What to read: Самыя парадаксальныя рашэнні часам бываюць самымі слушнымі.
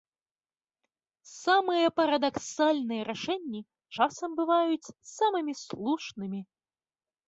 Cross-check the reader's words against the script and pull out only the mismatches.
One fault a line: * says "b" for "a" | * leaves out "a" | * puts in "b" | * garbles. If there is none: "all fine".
all fine